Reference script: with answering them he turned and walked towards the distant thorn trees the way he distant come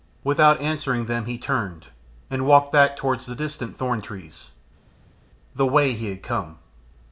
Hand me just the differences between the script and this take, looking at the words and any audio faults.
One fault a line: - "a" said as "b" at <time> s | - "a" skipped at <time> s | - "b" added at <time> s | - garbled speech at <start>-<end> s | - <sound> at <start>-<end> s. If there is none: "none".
- "with" said as "without" at 0.2 s
- "back" added at 2.7 s
- "distant" said as "had" at 6.1 s